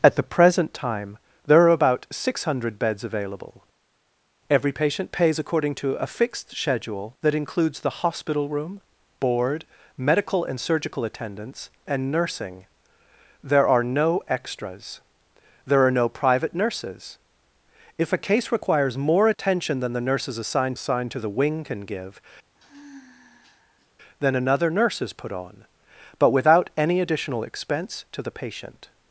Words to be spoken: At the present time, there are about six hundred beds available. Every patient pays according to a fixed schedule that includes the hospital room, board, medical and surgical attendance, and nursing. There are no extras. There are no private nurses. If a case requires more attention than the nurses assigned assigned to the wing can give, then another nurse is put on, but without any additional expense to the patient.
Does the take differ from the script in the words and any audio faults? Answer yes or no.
yes